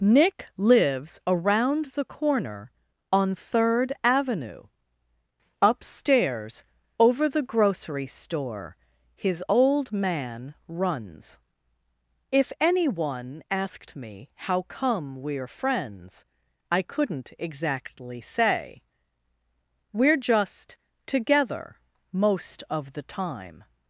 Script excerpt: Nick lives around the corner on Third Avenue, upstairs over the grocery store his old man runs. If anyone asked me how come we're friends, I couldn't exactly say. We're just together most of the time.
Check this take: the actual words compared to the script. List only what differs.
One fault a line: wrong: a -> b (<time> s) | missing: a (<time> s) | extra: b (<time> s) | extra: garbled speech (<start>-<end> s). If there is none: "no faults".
no faults